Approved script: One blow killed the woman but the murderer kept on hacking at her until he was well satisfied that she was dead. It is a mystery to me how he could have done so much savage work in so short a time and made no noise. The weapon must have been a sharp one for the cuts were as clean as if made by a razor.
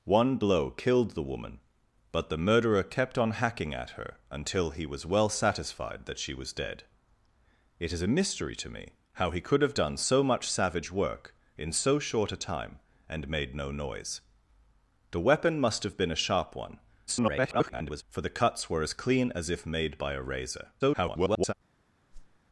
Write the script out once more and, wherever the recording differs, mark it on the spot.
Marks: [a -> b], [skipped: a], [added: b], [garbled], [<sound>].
One blow killed the woman but the murderer kept on hacking at her until he was well satisfied that she was dead. It is a mystery to me how he could have done so much savage work in so short a time and made no noise. The weapon must have been a sharp one [garbled] for the cuts were as clean as if made by a razor. [garbled] [whoosh]